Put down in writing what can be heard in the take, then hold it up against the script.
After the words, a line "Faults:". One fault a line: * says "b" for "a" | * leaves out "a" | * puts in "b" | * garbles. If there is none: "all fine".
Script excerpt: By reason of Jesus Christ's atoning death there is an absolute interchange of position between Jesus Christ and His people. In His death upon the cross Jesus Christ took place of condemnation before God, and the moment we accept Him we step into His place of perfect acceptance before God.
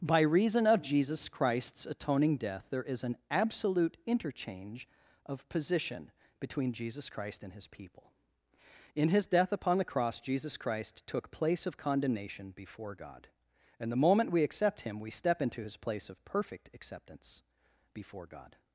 By reason of Jesus Christ's atoning death there is an absolute interchange of position between Jesus Christ and His people. In His death upon the cross Jesus Christ took place of condemnation before God, and the moment we accept Him we step into His place of perfect acceptance before God.
Faults:
all fine